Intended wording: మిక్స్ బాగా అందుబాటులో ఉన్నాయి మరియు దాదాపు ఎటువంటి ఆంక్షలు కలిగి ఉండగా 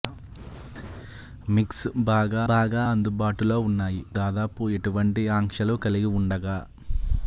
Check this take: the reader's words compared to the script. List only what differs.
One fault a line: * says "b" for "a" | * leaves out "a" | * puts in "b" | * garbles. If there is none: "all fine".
* puts in "బాగా"
* leaves out "మరియు"